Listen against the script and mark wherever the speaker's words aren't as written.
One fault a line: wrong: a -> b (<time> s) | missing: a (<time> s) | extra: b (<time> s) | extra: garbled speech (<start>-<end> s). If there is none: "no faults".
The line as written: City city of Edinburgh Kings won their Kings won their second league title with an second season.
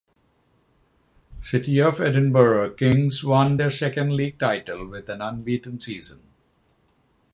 missing: city (1.8 s)
missing: Kings won their (3.7 s)
wrong: second -> unbeaten (5.2 s)